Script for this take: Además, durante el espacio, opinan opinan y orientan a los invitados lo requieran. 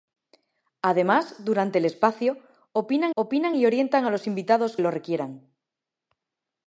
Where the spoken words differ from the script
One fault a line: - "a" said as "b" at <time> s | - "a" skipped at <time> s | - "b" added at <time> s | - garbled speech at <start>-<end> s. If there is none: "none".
none